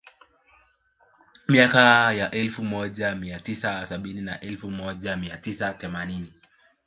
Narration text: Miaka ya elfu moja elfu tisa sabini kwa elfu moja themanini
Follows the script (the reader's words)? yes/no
no